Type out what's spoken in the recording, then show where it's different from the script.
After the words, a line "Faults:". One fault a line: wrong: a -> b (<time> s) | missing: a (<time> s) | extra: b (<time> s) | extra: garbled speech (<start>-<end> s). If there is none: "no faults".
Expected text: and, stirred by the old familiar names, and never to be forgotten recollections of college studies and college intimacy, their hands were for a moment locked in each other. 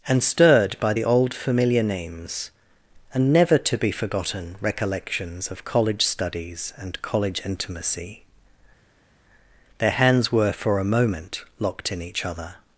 and, stirred by the old familiar names, and never to be forgotten recollections of college studies and college intimacy, their hands were for a moment locked in each other.
Faults:
no faults